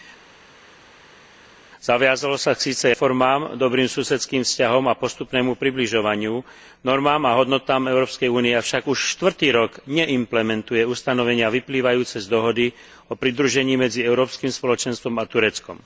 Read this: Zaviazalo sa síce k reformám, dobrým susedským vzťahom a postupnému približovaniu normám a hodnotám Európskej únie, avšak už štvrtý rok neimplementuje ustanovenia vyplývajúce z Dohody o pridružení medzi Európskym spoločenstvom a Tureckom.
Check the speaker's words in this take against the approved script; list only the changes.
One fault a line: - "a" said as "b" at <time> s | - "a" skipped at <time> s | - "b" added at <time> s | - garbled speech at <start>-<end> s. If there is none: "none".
- "k" skipped at 2.9 s